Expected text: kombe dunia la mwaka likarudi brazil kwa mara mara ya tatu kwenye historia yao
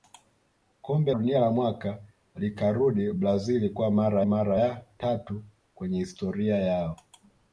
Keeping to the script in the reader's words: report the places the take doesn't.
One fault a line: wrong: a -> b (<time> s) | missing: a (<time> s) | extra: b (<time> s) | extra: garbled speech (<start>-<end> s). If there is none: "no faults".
no faults